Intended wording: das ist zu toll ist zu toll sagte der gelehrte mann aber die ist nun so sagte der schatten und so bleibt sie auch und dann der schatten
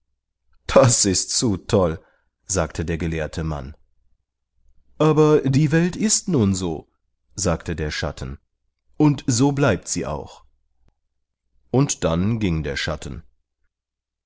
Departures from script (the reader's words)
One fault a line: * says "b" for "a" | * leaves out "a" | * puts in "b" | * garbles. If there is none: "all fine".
* leaves out "ist zu toll"
* puts in "welt"
* puts in "ging"